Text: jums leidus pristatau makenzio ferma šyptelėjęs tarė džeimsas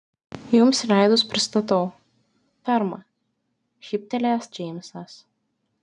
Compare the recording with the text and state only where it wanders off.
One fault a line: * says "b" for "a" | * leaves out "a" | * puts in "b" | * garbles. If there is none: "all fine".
* leaves out "makenzio"
* leaves out "tarė"